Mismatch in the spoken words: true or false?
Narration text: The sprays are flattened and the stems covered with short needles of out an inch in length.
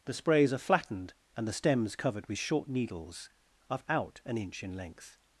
false